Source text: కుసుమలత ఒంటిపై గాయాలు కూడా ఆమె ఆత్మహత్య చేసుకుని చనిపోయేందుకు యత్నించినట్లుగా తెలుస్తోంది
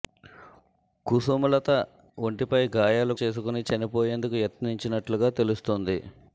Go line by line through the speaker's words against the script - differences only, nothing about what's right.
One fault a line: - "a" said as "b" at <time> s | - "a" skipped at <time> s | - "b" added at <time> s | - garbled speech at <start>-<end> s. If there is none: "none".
- "కూడా ఆమె ఆత్మహత్య" skipped at 3.1 s